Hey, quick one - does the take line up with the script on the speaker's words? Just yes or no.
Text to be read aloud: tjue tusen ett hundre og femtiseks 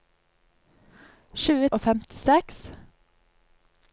no